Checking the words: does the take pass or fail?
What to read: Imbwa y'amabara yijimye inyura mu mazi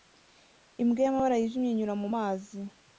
pass